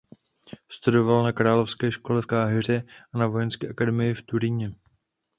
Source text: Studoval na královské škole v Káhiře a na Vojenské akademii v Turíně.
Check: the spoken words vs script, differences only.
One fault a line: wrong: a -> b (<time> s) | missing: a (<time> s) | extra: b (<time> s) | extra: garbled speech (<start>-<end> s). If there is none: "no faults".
no faults